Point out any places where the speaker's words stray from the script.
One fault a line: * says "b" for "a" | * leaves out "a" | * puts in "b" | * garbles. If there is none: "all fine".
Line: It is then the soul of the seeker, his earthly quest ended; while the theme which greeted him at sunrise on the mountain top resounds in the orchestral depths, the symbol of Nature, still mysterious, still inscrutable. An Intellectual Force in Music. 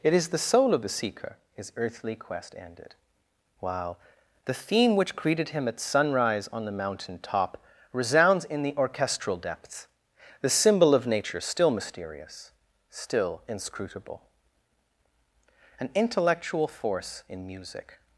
* leaves out "then"